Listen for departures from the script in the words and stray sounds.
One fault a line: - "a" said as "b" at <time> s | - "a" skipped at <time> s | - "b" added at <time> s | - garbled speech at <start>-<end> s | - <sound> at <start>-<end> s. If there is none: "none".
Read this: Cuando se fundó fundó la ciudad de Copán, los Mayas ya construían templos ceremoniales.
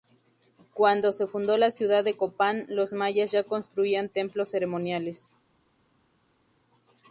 - "fundó" skipped at 1.6 s